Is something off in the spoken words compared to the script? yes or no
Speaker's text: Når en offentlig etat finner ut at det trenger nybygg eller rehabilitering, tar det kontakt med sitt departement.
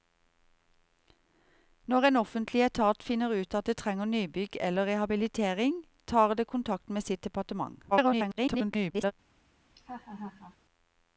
yes